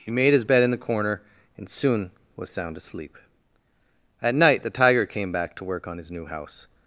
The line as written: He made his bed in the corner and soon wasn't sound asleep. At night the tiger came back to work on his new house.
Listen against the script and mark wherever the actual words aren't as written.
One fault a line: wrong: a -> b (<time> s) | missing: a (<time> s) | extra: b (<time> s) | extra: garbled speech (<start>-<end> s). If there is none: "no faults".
wrong: wasn't -> was (2.4 s)